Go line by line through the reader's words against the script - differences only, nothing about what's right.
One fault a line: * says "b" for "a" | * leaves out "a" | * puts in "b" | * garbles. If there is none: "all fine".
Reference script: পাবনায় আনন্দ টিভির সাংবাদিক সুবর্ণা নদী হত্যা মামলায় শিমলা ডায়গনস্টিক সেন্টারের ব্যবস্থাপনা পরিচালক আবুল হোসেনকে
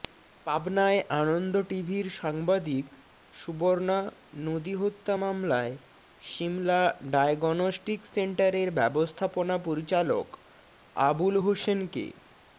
all fine